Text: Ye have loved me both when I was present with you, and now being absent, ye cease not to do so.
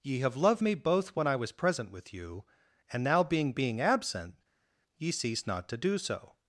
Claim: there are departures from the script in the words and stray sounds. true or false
true